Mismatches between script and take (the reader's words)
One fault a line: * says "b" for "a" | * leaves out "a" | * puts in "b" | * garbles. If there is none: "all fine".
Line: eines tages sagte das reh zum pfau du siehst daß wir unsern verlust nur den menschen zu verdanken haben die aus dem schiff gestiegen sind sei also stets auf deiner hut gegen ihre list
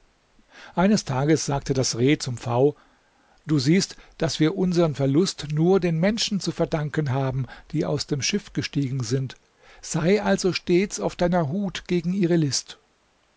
all fine